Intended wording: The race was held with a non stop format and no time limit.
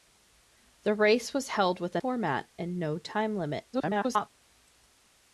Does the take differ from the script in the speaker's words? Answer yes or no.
yes